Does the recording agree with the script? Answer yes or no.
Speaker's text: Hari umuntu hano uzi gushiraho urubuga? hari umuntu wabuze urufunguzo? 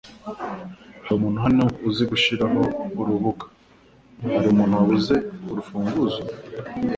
yes